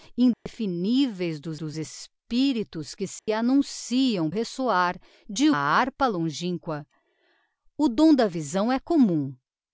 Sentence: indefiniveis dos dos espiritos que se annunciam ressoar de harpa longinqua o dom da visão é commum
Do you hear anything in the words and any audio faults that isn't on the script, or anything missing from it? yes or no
yes